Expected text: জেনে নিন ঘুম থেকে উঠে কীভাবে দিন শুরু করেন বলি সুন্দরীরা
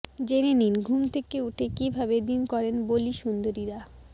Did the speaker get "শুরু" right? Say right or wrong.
wrong